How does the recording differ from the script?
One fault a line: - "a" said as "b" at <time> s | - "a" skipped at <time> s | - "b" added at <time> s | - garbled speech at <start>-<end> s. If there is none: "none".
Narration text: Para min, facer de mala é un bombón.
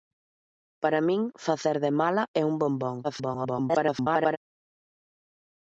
- garbled speech at 3.0-4.4 s